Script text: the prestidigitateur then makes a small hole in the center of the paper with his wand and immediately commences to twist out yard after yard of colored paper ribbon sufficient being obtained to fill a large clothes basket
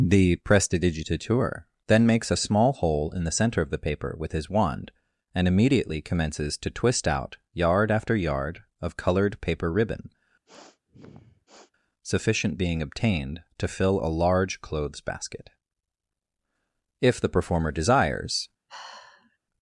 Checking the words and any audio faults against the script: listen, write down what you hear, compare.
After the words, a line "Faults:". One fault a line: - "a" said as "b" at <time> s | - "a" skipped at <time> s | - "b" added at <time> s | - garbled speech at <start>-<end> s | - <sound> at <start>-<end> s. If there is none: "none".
the prestidigitateur then makes a small hole in the center of the paper with his wand and immediately commences to twist out yard after yard of colored paper ribbon sufficient being obtained to fill a large clothes basket if the performer desires
Faults:
- sniff at 10.5-11.7 s
- "if the performer desires" added at 17.0 s
- sigh at 18.7-19.4 s